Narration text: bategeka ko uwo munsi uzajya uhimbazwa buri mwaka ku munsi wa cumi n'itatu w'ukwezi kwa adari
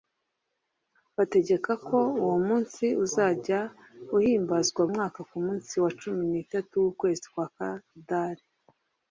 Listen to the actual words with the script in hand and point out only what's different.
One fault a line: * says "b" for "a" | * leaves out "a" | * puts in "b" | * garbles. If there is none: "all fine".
* leaves out "buri"